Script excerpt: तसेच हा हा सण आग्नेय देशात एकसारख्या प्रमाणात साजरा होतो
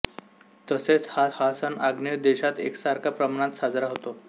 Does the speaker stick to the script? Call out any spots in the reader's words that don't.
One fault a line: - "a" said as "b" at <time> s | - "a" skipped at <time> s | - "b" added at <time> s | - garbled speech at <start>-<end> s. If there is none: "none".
none